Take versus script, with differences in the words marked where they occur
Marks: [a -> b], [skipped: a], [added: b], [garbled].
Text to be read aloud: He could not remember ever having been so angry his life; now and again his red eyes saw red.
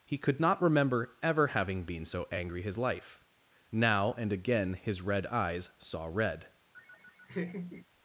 He could not remember ever having been so angry his life; now and again his red eyes saw red.